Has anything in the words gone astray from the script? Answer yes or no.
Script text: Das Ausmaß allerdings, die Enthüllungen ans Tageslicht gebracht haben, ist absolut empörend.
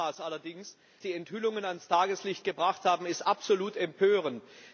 no